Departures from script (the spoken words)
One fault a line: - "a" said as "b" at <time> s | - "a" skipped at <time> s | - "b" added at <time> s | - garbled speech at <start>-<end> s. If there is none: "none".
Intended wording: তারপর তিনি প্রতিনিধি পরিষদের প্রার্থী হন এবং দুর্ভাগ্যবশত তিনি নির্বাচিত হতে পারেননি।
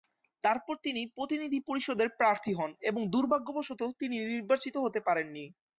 none